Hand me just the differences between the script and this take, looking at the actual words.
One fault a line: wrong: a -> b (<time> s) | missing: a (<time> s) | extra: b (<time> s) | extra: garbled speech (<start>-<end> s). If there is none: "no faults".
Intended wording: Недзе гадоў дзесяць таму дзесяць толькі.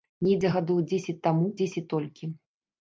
no faults